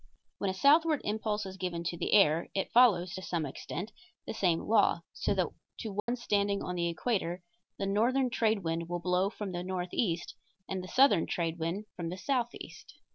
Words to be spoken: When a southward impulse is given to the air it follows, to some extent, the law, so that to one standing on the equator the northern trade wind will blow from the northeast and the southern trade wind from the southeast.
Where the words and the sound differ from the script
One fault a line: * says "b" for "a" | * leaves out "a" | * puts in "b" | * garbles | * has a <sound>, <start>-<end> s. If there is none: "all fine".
* puts in "same"
* has a dropout, 6.0-6.1 s